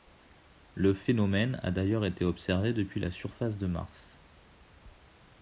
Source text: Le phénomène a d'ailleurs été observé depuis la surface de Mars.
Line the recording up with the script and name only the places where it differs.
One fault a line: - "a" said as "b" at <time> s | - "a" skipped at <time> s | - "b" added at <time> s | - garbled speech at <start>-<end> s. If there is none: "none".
none